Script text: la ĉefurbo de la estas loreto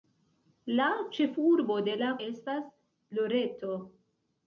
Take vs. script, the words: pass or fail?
pass